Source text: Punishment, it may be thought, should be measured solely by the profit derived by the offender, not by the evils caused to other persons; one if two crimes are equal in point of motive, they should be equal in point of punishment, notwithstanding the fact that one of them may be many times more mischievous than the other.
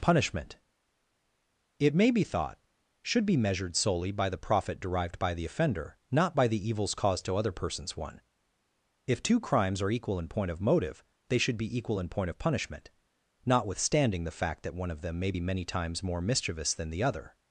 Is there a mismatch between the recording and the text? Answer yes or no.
no